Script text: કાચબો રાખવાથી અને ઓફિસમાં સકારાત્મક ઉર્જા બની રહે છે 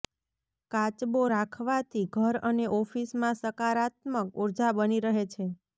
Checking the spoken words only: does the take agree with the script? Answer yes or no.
no